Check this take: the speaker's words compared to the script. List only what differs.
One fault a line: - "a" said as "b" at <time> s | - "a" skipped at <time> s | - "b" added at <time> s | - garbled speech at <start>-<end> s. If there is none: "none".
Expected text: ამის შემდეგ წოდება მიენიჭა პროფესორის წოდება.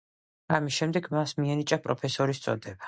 - "წოდება" said as "მას" at 1.2 s